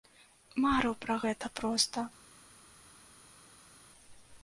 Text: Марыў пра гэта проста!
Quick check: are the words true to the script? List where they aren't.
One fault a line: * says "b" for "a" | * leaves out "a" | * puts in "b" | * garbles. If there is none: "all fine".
all fine